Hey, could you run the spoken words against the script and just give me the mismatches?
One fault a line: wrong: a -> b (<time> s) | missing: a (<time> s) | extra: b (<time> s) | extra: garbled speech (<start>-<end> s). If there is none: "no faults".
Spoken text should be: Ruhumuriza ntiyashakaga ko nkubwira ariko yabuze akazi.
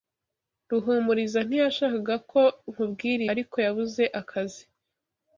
no faults